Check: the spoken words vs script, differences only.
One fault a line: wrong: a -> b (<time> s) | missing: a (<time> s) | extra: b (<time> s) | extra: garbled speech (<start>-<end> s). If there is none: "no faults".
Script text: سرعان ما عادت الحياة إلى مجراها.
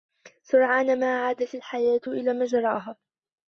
no faults